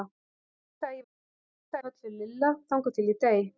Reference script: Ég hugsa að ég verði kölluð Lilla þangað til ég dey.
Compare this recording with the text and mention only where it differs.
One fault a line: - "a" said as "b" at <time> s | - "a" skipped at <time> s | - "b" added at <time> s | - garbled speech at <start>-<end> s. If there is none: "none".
- "verði" said as "hugsa" at 1.0 s